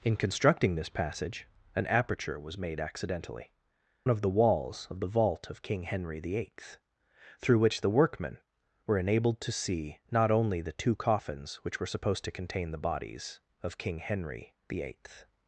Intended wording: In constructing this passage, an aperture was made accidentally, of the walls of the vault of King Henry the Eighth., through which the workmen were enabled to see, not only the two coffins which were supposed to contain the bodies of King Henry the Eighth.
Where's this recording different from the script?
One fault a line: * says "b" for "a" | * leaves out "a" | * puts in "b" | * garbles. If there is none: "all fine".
all fine